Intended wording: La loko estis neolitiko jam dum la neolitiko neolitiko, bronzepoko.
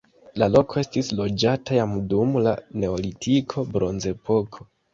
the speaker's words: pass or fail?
fail